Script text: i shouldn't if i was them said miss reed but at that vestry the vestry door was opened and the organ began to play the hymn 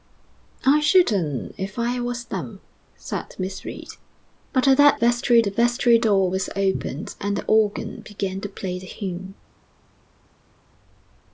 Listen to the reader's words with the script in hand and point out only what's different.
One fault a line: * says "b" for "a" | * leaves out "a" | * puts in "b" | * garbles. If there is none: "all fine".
all fine